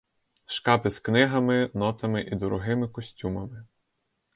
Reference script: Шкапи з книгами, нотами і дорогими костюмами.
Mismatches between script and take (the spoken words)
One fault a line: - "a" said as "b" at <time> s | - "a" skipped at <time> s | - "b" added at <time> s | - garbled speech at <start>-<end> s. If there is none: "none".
none